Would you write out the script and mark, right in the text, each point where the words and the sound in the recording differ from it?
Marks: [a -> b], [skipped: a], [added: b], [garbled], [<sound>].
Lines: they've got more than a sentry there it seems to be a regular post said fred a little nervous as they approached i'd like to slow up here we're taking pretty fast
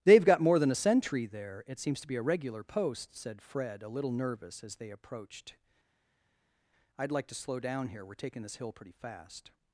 they've got more than a sentry there it seems to be a regular post said fred a little nervous as they approached i'd like to slow [up -> down] here we're taking [added: this hill] pretty fast